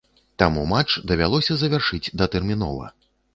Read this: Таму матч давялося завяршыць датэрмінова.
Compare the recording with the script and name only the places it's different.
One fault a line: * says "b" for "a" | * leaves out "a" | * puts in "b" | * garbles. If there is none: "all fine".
all fine